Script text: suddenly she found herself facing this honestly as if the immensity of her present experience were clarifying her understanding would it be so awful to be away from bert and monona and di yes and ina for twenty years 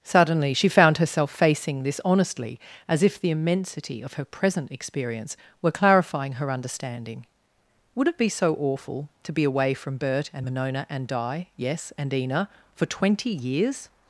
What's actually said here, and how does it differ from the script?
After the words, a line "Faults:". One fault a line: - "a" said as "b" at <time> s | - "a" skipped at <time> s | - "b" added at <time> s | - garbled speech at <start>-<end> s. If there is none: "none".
suddenly she found herself facing this honestly as if the immensity of her present experience were clarifying her understanding would it be so awful to be away from bert and monona and di yes and ina for twenty years
Faults:
none